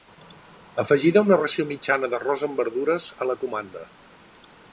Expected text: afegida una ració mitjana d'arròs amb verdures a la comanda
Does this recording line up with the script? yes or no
yes